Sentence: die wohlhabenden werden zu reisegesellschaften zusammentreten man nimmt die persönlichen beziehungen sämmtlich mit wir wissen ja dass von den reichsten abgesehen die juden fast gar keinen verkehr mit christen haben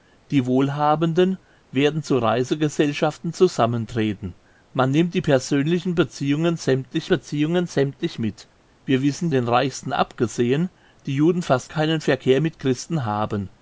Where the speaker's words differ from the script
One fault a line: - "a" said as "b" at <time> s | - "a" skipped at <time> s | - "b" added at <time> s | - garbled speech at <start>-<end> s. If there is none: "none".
- "beziehungen sämmtlich" added at 7.1 s
- "ja dass von" skipped at 9.3 s
- "gar" skipped at 11.7 s